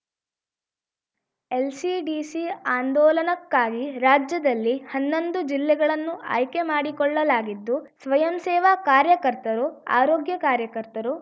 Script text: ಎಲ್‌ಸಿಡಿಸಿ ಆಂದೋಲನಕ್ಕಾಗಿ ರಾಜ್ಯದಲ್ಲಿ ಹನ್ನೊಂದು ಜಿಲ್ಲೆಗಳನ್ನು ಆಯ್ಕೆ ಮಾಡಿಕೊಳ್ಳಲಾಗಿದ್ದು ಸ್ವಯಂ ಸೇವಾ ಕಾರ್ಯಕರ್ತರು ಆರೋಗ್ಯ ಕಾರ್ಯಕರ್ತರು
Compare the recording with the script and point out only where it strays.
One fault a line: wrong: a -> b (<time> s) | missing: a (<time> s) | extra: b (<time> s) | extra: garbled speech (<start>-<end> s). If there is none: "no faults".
no faults